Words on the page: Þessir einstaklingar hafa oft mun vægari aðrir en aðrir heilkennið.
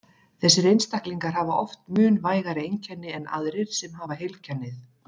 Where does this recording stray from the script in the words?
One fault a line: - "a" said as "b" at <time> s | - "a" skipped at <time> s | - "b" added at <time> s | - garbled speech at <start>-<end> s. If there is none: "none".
- "aðrir" said as "einkenni" at 2.7 s
- "sem hafa" added at 3.8 s